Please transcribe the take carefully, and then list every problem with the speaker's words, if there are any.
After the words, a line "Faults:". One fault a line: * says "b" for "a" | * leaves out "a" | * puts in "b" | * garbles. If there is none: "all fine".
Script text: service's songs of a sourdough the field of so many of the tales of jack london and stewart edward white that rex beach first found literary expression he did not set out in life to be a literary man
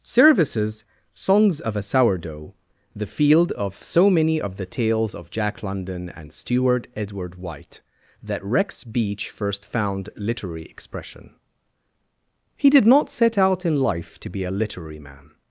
service's songs of a sourdough the field of so many of the tales of jack london and stewart edward white that rex beach first found literary expression he did not set out in life to be a literary man
Faults:
all fine